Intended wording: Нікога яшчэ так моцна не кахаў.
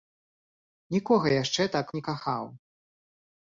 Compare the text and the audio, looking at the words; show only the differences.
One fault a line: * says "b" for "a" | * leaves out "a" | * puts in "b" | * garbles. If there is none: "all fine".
* leaves out "моцна"